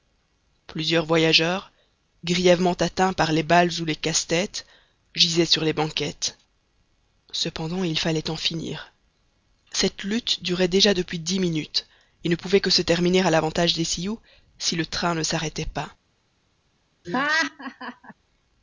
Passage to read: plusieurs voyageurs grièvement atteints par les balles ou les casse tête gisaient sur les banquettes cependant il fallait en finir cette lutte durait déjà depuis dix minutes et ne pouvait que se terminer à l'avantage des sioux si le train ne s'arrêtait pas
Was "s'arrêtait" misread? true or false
false